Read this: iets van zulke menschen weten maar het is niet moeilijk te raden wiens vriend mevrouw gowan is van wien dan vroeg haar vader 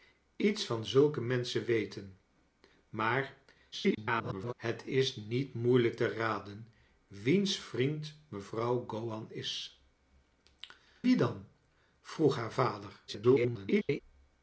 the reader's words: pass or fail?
fail